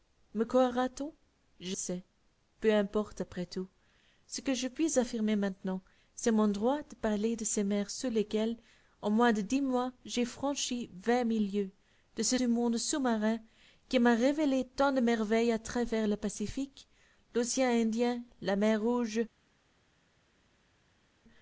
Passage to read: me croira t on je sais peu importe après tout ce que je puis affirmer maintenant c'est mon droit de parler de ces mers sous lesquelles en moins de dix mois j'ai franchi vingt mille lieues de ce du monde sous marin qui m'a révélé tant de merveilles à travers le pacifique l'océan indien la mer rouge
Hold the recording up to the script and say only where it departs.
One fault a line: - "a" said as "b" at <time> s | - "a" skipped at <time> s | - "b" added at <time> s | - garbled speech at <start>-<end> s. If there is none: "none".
none